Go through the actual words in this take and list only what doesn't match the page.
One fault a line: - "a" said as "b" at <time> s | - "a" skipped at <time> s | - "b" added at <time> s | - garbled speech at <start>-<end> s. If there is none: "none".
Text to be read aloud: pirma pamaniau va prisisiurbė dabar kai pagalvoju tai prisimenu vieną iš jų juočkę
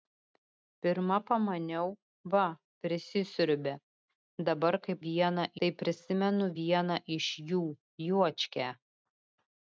- "pagalvoju" said as "vieną" at 5.1 s